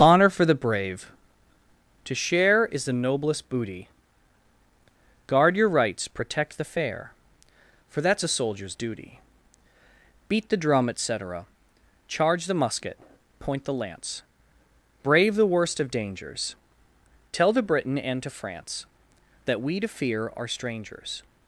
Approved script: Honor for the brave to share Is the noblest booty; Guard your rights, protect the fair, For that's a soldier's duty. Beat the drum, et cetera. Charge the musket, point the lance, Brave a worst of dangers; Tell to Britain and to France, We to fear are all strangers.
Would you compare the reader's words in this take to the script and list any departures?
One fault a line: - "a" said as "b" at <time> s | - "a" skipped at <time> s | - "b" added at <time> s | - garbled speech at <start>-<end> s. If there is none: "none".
- "a" said as "the" at 15.3 s
- "That" added at 19.5 s
- "all" skipped at 20.5 s